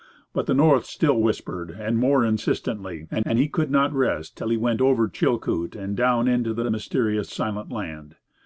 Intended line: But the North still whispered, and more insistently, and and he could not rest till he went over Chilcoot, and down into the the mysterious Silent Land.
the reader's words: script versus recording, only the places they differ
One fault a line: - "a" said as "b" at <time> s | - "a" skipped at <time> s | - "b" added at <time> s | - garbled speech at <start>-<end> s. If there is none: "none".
none